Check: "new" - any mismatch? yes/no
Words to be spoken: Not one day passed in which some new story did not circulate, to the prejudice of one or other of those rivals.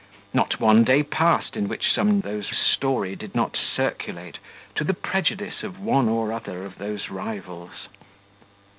yes